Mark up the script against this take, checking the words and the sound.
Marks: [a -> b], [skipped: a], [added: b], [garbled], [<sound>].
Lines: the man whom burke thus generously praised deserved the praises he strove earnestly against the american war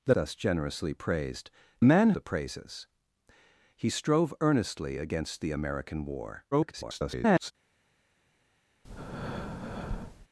the [skipped: man whom burke] thus generously praised [deserved -> man] the praises he strove earnestly against the american war [garbled] [breath]